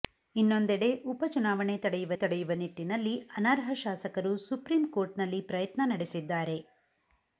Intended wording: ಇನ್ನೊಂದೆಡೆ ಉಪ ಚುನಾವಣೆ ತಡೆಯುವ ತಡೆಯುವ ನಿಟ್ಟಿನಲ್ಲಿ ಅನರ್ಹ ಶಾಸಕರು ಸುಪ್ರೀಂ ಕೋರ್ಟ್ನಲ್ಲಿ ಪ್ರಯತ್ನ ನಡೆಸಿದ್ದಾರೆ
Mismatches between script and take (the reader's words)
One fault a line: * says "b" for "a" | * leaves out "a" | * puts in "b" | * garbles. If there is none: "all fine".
all fine